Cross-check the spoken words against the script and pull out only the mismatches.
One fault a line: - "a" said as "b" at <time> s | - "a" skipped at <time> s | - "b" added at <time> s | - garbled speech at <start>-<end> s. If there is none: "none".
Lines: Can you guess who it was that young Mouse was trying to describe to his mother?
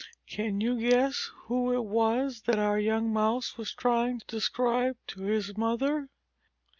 - "our" added at 2.6 s